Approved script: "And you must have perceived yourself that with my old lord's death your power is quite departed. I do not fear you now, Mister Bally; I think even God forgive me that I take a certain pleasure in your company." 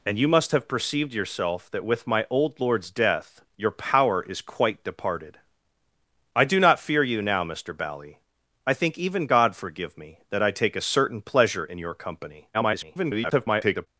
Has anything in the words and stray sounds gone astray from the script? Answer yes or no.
yes